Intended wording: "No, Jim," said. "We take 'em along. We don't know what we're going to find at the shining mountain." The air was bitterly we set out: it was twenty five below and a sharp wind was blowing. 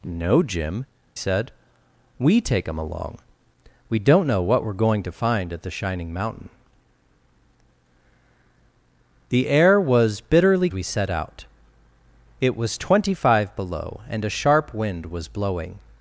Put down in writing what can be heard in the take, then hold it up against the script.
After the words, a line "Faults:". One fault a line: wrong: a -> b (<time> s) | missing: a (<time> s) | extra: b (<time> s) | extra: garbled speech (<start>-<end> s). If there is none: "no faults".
"No, Jim," said. "We take 'em along. We don't know what we're going to find at the shining mountain." The air was bitterly we set out: it was twenty five below and a sharp wind was blowing.
Faults:
no faults